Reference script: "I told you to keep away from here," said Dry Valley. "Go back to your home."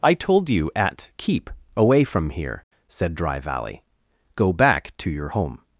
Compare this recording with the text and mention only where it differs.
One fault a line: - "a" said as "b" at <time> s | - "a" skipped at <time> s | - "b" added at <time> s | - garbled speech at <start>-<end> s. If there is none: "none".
- "to" said as "at" at 0.8 s